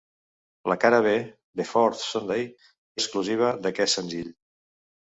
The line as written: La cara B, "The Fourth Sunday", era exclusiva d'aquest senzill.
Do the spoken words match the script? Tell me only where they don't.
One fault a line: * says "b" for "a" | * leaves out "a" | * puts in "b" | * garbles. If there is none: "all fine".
* leaves out "era"